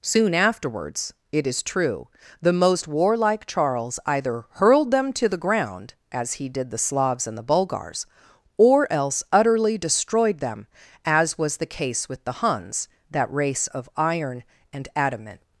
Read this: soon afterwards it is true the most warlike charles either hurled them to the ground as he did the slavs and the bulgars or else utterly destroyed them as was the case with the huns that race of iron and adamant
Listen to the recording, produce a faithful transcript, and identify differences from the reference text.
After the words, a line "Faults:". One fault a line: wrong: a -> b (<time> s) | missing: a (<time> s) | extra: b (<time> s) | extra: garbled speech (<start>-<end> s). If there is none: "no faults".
soon afterwards it is true the most warlike charles either hurled them to the ground as he did the slavs and the bulgars or else utterly destroyed them as was the case with the huns that race of iron and adamant
Faults:
no faults